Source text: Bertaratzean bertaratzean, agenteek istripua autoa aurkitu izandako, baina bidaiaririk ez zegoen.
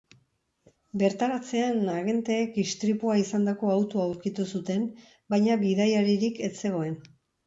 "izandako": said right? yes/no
no